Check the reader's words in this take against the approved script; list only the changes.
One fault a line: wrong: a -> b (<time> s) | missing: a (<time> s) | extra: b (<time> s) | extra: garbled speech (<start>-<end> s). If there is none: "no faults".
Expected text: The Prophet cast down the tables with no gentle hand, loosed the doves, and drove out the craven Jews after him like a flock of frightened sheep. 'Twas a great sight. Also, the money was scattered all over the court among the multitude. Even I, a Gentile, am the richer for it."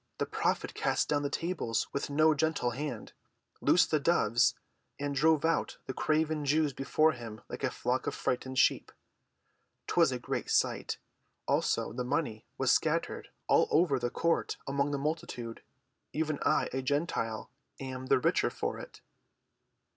wrong: after -> before (6.7 s)